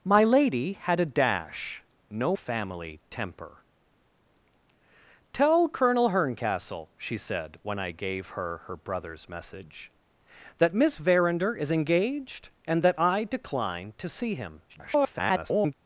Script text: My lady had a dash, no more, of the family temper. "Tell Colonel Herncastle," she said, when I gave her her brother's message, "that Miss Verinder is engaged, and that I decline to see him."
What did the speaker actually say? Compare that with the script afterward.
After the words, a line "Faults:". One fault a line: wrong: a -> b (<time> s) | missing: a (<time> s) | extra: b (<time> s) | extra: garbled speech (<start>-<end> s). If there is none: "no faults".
My lady had a dash, no family temper. "Tell Colonel Herncastle," she said, when I gave her her brother's message, "that Miss Verinder is engaged, and that I decline to see him." [garbled]
Faults:
missing: more of the (2.4 s)
extra: garbled speech (14.7-15.7 s)